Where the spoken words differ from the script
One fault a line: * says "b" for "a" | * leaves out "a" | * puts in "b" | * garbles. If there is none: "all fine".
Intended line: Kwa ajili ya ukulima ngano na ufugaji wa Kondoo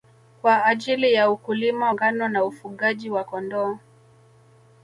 all fine